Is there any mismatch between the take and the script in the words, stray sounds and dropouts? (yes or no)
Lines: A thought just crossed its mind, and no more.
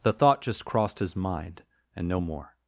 yes